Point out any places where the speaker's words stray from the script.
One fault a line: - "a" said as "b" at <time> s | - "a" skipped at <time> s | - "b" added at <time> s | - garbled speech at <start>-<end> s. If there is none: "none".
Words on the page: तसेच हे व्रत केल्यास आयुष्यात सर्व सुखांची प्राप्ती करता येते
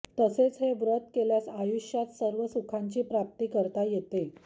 none